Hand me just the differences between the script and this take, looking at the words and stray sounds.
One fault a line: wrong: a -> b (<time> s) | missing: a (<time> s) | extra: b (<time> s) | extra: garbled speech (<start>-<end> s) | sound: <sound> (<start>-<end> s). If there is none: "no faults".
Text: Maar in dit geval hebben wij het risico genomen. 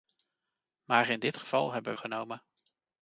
missing: wij het risico (1.9 s)